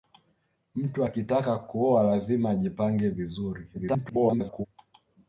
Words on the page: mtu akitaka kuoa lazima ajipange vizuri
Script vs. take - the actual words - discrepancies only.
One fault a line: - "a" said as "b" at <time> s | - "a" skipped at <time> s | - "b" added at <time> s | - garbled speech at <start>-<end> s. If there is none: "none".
- garbled speech at 3.7-4.7 s